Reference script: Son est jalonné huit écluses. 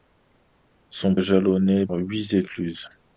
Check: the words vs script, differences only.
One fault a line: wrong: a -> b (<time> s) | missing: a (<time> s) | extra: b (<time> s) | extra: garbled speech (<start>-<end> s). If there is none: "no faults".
no faults